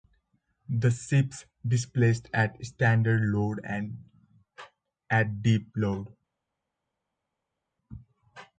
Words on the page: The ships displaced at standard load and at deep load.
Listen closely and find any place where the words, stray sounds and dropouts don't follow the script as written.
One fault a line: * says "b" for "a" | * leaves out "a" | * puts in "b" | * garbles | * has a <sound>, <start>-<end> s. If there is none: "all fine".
all fine